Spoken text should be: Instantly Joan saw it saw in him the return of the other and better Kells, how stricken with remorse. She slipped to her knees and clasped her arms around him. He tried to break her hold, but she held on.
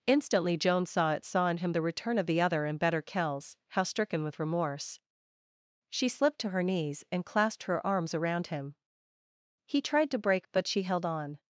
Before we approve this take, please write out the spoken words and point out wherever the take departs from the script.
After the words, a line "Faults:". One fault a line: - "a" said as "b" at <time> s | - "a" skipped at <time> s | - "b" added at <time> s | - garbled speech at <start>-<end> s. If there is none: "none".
Instantly Joan saw it saw in him the return of the other and better Kells, how stricken with remorse. She slipped to her knees and clasped her arms around him. He tried to break but she held on.
Faults:
- "her hold" skipped at 10.5 s